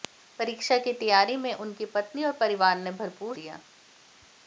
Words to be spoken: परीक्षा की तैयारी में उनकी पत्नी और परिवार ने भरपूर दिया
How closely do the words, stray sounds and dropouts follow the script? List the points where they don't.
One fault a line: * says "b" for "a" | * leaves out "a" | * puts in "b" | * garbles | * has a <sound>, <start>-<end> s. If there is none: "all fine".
all fine